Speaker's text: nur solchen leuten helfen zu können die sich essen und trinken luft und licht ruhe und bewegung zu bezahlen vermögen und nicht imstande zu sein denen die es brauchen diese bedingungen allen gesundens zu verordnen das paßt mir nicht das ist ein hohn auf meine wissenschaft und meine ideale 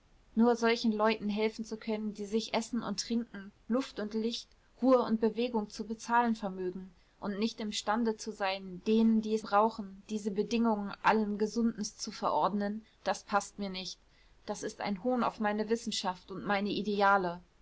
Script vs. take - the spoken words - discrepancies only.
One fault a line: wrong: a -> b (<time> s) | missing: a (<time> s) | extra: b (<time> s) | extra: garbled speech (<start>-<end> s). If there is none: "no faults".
no faults